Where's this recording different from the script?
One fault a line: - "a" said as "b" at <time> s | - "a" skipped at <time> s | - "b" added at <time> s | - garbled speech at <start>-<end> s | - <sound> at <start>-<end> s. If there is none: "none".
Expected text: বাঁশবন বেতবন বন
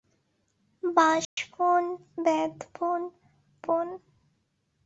- dropout at 1.2-1.4 s